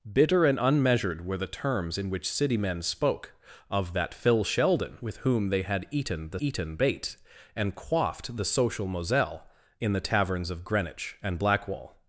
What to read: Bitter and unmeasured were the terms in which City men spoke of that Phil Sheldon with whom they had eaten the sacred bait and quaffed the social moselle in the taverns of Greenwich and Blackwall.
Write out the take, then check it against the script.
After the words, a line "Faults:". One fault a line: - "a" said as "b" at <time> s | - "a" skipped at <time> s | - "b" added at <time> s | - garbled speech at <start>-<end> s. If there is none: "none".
Bitter and unmeasured were the terms in which City men spoke of that Phil Sheldon with whom they had eaten the eaten bait and quaffed the social moselle in the taverns of Greenwich and Blackwall.
Faults:
- "sacred" said as "eaten" at 6.4 s